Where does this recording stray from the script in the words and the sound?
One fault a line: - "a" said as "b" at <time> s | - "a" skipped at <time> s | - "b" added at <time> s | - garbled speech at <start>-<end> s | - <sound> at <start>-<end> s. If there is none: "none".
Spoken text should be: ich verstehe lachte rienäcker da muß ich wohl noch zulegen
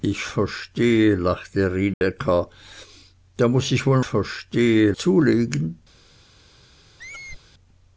- dropout at 1.9-2.0 s
- "noch" said as "verstehe" at 4.0 s
- squeak at 7.0-7.4 s